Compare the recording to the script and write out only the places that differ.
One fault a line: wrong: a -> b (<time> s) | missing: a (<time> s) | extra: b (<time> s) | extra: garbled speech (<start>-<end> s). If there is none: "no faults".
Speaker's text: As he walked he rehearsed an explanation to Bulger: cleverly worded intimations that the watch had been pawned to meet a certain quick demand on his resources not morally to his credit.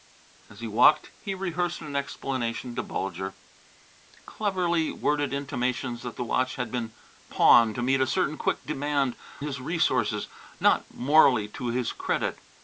missing: on (9.2 s)